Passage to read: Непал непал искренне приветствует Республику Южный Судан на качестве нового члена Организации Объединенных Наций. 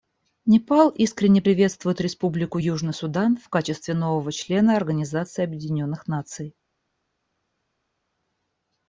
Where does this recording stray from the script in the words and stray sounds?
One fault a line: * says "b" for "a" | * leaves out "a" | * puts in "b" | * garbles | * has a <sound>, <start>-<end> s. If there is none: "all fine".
* leaves out "непал"
* says "в" for "на"